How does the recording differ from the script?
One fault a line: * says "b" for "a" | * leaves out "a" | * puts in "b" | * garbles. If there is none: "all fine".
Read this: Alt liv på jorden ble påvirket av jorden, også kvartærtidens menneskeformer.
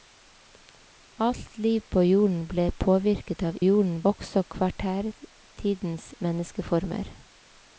all fine